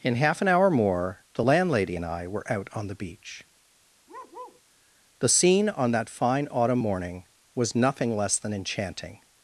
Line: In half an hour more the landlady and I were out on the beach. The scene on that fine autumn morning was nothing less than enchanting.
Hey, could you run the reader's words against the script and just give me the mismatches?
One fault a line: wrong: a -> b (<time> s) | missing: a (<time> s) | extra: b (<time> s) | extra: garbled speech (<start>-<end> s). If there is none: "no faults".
no faults